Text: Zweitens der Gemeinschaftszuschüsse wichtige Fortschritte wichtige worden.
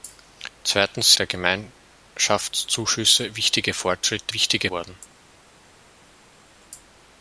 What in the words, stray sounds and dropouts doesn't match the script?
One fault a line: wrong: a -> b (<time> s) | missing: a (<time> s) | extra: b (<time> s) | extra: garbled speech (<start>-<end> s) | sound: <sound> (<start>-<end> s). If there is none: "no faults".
no faults